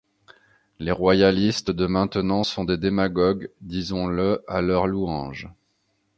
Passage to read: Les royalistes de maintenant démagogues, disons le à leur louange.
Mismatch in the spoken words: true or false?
true